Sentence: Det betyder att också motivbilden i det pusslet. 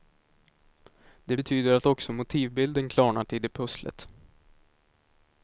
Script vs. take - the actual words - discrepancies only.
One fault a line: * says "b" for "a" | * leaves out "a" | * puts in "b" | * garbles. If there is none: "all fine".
* puts in "klarnat"